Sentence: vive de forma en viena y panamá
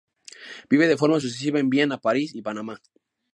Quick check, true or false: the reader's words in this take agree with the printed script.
false